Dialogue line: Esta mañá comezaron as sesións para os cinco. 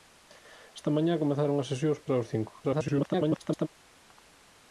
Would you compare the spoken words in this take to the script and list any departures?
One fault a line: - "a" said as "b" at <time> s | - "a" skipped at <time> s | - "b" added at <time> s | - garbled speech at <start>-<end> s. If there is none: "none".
- garbled speech at 2.6-3.7 s